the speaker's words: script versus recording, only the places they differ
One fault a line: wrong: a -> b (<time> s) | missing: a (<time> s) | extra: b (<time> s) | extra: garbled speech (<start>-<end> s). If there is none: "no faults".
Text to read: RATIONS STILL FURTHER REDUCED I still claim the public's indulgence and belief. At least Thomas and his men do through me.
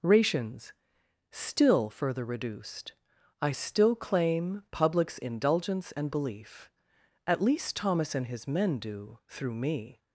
missing: the (4.6 s)